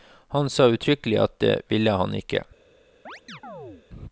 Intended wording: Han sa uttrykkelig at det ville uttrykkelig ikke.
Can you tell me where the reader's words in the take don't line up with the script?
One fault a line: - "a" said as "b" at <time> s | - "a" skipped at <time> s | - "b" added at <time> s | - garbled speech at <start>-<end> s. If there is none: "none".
- "uttrykkelig" said as "han" at 1.9 s